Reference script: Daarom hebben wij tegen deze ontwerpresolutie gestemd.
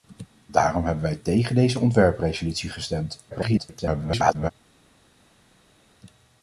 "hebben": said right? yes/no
yes